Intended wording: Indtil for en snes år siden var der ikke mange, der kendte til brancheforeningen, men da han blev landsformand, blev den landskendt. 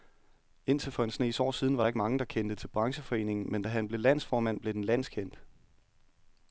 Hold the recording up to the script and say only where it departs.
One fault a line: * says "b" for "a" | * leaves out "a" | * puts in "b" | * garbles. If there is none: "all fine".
all fine